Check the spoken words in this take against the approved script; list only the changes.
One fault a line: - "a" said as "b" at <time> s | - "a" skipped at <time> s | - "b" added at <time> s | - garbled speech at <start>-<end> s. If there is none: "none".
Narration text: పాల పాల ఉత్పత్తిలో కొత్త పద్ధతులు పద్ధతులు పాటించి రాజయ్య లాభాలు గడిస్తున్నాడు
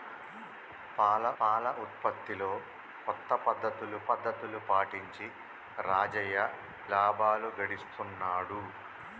none